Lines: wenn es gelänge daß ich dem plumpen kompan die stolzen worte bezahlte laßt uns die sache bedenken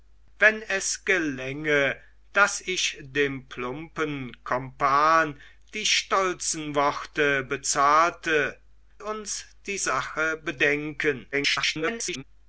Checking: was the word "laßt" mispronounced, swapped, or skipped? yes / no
yes